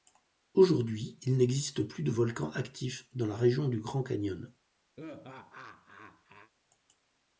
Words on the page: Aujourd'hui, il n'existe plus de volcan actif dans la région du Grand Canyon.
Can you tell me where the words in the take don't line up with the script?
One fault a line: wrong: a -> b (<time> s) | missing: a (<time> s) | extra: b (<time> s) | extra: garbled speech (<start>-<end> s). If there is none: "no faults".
no faults